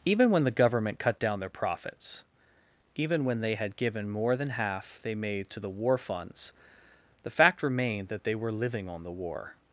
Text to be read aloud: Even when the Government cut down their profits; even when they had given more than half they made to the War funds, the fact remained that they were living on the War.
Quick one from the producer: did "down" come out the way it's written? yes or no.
yes